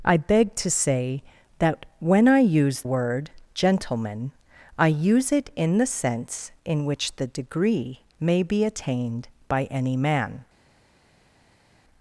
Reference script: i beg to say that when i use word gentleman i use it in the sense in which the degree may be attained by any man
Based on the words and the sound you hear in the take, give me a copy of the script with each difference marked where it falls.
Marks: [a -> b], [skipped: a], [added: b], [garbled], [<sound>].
i beg to say that when i use word gentleman i use it in the sense in which the degree may be attained by any man